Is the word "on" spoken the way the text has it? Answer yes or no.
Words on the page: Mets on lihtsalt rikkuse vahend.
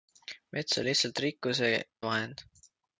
yes